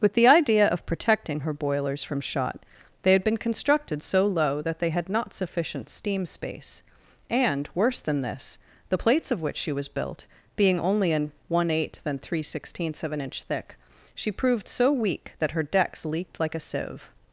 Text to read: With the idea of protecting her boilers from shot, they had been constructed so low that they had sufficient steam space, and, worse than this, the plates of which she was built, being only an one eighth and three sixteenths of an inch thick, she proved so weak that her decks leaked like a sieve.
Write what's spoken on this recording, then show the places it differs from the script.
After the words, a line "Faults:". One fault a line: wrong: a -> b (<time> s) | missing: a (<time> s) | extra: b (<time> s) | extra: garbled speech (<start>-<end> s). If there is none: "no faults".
With the idea of protecting her boilers from shot, they had been constructed so low that they had not sufficient steam space, and, worse than this, the plates of which she was built, being only an one eighth and three sixteenths of an inch thick, she proved so weak that her decks leaked like a sieve.
Faults:
extra: not (5.1 s)